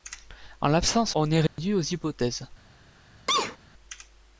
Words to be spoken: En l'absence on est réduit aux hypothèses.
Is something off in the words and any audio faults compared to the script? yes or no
yes